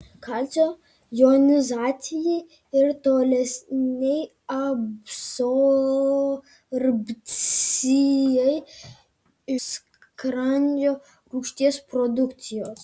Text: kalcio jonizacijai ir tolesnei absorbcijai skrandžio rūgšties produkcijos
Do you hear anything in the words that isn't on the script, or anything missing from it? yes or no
no